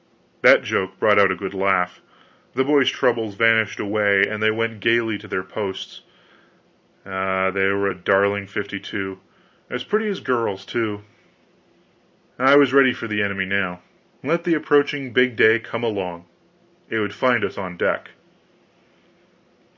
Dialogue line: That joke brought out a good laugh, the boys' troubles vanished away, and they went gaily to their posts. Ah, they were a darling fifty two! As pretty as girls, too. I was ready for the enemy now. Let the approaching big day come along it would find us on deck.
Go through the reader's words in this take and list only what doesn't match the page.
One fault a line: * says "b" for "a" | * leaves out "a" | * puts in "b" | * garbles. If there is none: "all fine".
all fine